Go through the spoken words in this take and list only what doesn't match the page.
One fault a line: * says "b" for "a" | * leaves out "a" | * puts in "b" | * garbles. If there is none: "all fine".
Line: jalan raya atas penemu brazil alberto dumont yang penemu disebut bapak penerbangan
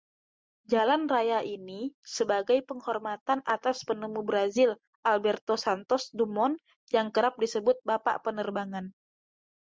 * puts in "ini sebagai penghormatan"
* puts in "santos"
* says "kerap" for "penemu"